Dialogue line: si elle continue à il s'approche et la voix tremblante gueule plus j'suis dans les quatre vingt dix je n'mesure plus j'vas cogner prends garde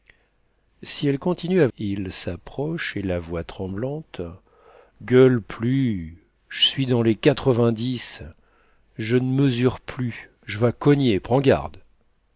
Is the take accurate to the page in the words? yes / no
yes